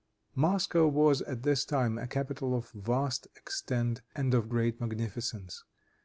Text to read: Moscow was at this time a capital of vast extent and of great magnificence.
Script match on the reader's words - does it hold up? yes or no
yes